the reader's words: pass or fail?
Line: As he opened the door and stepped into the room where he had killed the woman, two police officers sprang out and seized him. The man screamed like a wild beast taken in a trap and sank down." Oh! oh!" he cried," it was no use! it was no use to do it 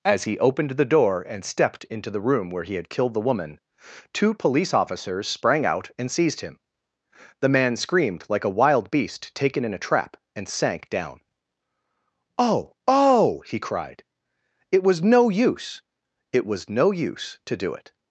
pass